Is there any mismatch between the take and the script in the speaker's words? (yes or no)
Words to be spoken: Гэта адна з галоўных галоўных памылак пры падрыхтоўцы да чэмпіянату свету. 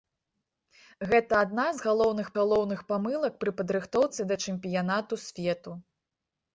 no